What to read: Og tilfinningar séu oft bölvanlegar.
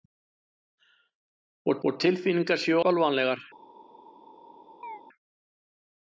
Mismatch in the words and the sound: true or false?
true